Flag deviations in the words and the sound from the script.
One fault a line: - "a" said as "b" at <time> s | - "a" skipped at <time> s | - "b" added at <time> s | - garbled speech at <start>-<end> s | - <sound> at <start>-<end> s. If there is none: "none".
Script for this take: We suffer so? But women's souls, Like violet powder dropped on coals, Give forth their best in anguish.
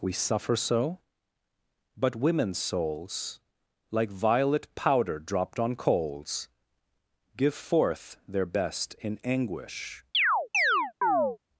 - chirp at 10.1-11.4 s